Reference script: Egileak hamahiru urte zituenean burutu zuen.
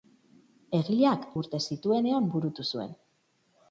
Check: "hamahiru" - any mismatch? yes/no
yes